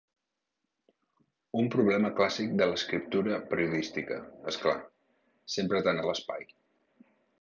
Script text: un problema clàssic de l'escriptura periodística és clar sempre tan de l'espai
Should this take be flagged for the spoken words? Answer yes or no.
no